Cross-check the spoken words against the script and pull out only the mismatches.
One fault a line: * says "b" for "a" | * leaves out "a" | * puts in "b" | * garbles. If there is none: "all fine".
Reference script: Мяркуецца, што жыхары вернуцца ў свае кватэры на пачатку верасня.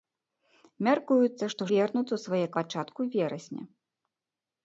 * leaves out "жыхары"
* leaves out "кватэры на"